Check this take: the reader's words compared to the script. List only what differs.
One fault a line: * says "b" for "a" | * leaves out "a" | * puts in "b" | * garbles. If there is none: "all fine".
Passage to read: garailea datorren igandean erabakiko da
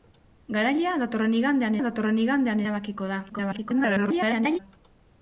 * puts in "datorren igandean"
* garbles